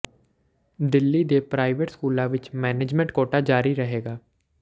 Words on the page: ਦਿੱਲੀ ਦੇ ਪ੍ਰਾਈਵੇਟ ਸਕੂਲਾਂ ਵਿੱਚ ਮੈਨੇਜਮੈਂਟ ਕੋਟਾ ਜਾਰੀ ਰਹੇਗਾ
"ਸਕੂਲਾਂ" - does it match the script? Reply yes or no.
yes